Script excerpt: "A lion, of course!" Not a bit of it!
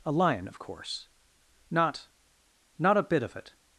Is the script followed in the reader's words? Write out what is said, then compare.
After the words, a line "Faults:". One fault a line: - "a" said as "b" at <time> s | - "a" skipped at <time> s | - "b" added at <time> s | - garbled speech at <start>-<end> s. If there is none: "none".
"A lion, of course!" Not Not a bit of it!
Faults:
- "Not" added at 2.8 s